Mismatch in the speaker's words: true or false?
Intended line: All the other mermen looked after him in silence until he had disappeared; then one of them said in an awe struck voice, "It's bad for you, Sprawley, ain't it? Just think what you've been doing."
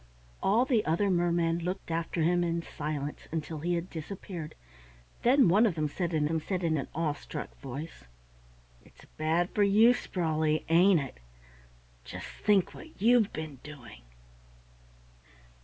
true